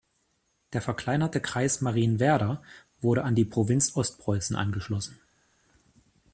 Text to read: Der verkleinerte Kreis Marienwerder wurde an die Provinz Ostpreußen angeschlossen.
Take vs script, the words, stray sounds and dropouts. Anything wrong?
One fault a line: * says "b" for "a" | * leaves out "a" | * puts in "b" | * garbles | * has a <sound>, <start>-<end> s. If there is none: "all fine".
all fine